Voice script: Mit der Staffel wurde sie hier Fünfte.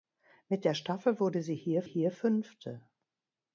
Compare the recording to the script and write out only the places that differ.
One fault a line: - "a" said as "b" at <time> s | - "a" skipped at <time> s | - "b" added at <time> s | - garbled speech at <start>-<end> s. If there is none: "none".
- "hier" added at 1.8 s